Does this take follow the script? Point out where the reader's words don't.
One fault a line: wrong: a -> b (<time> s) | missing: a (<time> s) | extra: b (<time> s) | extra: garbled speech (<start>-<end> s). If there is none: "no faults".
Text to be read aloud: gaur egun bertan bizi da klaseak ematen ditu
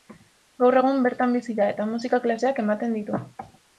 extra: eta musika (1.7 s)